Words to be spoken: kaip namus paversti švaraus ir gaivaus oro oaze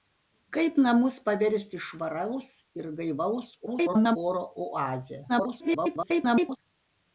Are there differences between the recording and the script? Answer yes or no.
yes